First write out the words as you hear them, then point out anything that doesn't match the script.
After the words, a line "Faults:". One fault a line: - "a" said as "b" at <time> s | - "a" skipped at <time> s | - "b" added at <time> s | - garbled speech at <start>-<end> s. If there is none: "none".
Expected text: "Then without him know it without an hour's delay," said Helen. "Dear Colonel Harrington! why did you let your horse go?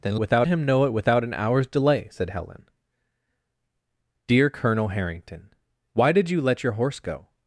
"Then without him know it without an hour's delay," said Helen. "Dear Colonel Harrington! why did you let your horse go?
Faults:
none